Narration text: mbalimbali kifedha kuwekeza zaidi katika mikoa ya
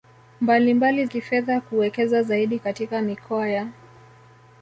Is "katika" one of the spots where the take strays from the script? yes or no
no